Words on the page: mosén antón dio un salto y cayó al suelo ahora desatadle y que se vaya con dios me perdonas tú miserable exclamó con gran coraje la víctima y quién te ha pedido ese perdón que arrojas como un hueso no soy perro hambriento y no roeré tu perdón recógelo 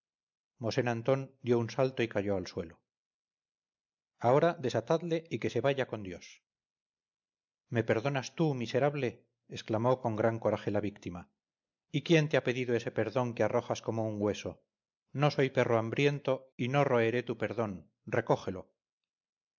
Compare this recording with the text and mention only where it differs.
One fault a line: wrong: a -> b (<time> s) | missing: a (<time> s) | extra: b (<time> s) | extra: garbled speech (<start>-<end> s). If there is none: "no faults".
no faults